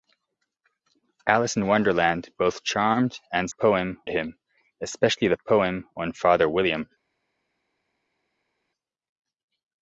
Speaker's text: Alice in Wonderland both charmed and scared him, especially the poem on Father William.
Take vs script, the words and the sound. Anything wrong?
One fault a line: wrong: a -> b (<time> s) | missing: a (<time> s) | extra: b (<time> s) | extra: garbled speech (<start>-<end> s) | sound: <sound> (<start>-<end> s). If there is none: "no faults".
wrong: scared -> poem (3.5 s)